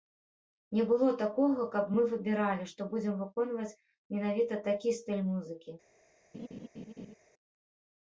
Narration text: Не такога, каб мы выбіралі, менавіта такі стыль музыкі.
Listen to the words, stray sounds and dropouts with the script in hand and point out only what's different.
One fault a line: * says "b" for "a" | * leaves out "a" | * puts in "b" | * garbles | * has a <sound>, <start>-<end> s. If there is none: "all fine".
* puts in "было"
* puts in "што будзем выконваць"
* has a laugh, 6.3-7.1 s